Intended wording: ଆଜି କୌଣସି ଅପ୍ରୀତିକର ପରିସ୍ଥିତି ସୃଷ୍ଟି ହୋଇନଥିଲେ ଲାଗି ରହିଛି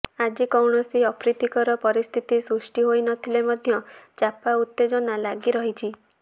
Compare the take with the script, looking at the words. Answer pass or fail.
fail